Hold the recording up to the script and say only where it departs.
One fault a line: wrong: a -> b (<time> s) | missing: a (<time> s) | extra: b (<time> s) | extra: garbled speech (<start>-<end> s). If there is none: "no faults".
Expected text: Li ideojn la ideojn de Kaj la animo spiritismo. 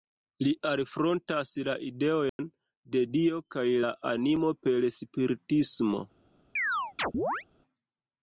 wrong: ideojn -> alfrontas (0.7 s)
extra: Dio (3.2 s)
extra: per (4.7 s)